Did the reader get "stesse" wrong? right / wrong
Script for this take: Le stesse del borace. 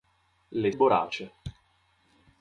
wrong